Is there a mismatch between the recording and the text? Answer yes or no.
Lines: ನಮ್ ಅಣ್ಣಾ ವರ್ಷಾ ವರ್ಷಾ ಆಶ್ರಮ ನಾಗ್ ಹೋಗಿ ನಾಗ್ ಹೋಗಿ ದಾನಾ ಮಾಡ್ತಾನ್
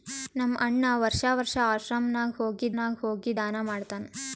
no